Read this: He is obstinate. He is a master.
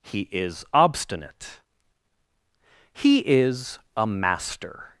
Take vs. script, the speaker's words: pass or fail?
pass